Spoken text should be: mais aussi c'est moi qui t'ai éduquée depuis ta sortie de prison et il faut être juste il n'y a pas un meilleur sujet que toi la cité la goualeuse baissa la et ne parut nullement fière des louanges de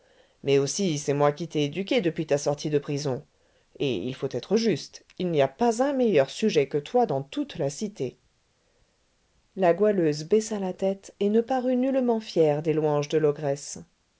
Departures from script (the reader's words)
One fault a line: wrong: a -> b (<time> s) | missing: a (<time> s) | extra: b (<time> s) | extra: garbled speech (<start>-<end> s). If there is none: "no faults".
extra: dans toute (7.1 s)
extra: tête (10.7 s)